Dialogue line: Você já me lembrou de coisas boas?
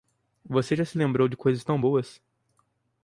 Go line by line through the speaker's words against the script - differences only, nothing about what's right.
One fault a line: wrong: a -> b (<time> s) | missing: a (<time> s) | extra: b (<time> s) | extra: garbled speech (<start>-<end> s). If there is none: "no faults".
wrong: me -> se (0.8 s)
extra: tão (1.6 s)